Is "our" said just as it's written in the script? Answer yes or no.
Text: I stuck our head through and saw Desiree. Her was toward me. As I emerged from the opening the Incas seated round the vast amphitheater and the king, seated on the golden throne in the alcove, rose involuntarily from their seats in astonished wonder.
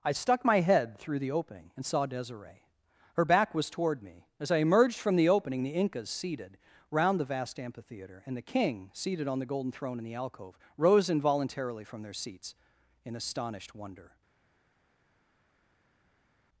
no